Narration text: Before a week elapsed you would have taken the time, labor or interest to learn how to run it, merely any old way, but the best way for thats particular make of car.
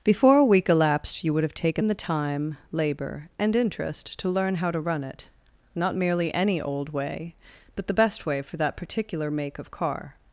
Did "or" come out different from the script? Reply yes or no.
yes